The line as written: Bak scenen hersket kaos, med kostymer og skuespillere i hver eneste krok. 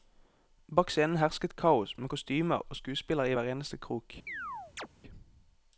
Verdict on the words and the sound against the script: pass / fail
fail